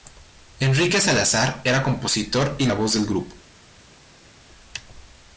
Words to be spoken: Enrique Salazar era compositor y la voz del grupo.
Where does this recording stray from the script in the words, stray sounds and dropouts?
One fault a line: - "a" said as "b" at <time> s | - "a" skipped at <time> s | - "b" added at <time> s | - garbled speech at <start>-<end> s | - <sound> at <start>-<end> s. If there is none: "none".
none